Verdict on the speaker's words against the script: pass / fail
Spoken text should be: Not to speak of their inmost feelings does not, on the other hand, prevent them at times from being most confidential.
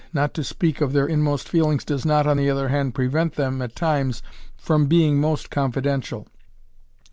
pass